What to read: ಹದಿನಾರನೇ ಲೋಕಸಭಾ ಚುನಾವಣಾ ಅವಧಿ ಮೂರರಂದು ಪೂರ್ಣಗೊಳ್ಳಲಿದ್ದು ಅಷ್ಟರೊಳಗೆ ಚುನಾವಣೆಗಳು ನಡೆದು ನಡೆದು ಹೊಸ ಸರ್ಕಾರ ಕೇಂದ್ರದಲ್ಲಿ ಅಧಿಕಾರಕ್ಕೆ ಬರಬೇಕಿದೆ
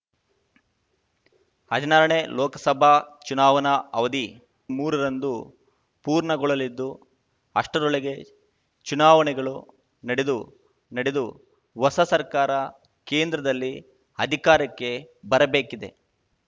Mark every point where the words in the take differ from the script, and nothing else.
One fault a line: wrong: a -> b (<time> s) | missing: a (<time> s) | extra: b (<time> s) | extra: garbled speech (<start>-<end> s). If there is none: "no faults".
no faults